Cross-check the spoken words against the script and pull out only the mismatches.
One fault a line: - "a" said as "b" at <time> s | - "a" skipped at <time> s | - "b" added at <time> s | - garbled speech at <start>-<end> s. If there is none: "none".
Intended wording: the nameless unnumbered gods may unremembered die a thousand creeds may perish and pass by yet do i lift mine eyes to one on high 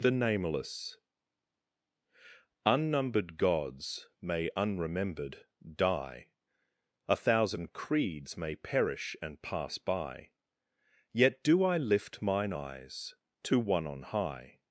none